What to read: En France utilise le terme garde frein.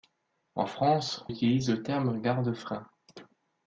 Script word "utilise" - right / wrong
right